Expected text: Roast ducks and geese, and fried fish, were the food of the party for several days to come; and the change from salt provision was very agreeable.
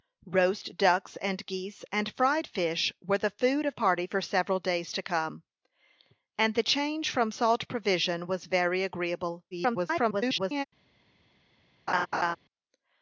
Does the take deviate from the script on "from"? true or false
false